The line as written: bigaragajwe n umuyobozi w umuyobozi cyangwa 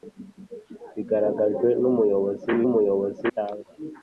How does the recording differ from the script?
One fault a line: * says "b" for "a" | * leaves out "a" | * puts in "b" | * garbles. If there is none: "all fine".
all fine